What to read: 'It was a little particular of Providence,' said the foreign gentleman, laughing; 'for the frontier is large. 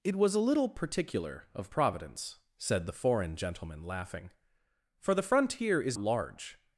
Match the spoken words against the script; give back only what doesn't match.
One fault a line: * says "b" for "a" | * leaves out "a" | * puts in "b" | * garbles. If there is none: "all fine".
all fine